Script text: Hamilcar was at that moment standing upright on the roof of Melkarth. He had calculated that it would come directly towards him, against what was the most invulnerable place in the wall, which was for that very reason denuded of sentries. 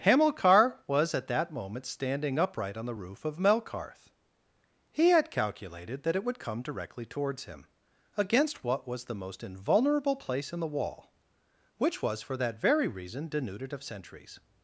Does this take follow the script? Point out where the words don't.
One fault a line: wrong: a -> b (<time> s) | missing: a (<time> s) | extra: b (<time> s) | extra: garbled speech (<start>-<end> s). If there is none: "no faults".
no faults